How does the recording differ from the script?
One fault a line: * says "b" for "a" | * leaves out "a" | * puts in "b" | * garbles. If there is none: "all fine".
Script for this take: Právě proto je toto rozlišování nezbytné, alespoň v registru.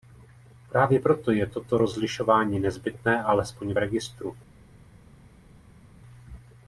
all fine